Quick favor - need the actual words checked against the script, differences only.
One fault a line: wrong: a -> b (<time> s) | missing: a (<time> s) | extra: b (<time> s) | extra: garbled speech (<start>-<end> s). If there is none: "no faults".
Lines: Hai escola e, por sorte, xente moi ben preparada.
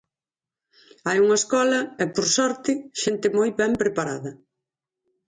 extra: unha (1.2 s)